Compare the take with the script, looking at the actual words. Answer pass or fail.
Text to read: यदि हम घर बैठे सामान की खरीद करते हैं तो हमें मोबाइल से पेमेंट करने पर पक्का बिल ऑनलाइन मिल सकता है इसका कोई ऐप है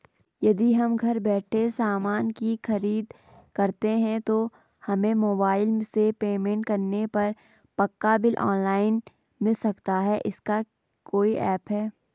pass